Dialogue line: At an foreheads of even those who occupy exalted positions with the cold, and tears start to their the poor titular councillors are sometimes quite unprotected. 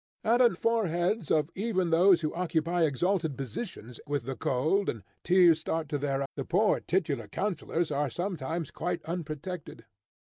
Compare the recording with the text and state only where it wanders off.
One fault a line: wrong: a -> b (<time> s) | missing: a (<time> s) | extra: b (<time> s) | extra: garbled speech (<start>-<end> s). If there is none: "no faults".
no faults